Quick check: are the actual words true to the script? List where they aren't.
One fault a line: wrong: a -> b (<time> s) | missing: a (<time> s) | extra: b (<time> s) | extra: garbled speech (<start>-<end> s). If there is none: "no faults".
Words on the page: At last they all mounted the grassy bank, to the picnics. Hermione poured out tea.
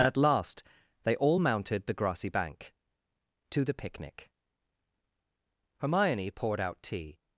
wrong: picnics -> picnic (3.7 s)